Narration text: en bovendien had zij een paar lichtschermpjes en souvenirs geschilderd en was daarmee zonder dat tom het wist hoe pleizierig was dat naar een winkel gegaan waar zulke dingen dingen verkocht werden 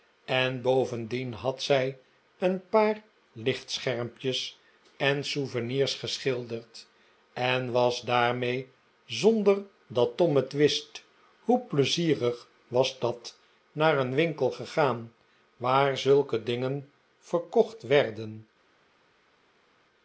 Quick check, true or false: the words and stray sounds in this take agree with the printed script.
false